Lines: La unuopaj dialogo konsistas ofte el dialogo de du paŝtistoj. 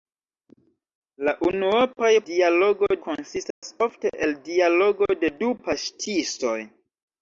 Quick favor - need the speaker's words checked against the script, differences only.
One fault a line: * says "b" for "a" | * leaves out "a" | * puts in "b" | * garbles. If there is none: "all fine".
all fine